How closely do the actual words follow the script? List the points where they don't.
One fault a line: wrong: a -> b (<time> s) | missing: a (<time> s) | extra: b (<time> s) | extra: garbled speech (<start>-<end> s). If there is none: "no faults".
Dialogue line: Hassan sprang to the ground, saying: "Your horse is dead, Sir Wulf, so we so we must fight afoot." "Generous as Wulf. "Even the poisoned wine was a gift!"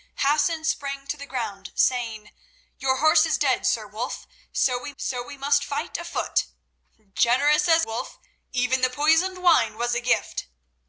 no faults